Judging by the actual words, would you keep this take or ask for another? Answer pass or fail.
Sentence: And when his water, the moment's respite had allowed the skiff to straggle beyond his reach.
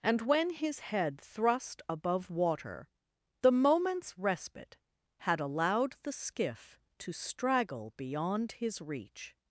fail